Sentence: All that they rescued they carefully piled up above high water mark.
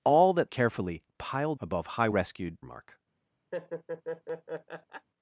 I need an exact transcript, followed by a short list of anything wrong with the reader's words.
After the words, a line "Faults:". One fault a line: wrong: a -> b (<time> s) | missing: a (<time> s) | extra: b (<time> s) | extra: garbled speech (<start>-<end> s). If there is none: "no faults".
All that carefully piled above high rescued mark.
Faults:
missing: they rescued they (0.5 s)
missing: up (1.6 s)
wrong: water -> rescued (2.1 s)